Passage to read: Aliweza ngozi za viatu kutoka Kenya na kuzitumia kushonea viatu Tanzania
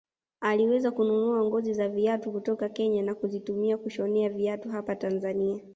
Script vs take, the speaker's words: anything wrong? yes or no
yes